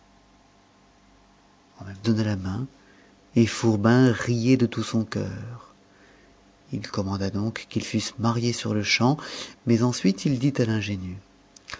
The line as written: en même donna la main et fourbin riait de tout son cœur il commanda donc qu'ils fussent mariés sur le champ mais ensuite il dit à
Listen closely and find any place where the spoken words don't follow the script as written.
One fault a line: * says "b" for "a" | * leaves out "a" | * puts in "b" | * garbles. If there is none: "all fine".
all fine